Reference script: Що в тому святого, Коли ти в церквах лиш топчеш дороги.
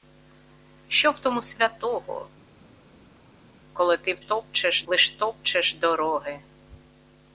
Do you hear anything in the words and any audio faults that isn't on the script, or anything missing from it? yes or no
yes